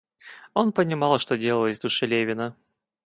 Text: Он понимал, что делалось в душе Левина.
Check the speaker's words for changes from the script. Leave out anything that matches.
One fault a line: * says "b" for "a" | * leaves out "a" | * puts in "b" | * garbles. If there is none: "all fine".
all fine